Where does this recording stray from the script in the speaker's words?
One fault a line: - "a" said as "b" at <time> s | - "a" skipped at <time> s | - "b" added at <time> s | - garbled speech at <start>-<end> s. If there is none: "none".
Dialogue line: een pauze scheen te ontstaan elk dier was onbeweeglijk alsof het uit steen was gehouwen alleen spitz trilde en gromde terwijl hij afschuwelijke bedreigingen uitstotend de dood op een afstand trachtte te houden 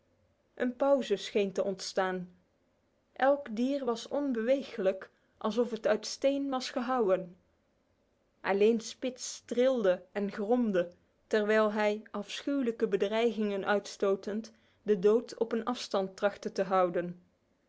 none